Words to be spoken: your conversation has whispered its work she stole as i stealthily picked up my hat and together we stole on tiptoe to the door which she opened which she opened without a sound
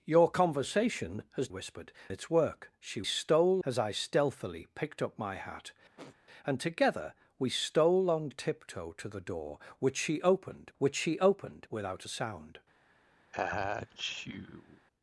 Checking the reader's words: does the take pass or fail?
pass